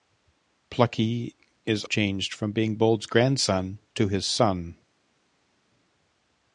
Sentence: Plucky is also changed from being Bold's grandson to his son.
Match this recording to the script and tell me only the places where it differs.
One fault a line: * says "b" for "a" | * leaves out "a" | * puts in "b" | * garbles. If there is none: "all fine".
* leaves out "also"